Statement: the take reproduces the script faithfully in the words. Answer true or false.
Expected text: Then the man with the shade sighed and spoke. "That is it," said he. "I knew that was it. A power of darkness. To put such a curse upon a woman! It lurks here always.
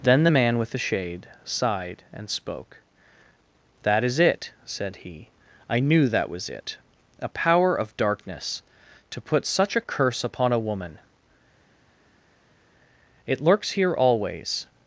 true